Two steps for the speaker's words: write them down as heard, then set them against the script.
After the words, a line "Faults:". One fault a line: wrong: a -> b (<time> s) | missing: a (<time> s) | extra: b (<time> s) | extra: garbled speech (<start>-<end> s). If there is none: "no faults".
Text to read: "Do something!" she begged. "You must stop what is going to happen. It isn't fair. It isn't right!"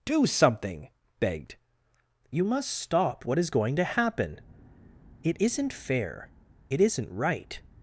"Do something!" begged. "You must stop what is going to happen. It isn't fair. It isn't right!"
Faults:
missing: she (0.9 s)